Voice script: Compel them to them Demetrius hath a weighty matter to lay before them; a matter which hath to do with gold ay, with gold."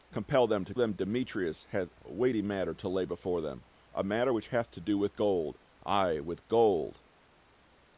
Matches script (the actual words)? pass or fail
pass